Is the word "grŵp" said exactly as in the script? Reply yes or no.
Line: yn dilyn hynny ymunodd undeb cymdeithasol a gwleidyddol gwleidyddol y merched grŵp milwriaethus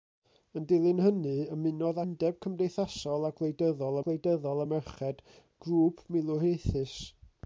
yes